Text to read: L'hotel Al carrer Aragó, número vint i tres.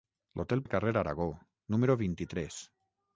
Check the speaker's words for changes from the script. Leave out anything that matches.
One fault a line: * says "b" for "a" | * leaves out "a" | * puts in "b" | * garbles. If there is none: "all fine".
all fine